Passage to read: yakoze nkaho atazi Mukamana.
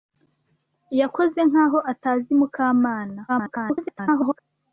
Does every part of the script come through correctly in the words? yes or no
no